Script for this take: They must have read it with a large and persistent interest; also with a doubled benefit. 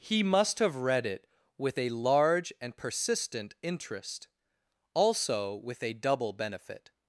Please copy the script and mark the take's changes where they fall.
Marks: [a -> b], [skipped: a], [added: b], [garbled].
[They -> He] must have read it with a large and persistent interest; also with a [doubled -> double] benefit.